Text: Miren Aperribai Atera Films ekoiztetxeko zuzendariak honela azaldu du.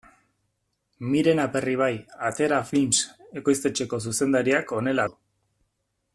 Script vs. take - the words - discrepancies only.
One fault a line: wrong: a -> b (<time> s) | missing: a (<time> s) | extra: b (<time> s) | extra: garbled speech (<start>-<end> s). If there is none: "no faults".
missing: azaldu (5.1 s)